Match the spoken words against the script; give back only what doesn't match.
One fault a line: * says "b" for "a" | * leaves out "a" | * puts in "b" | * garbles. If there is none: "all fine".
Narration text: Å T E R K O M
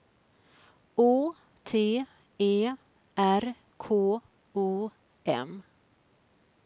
all fine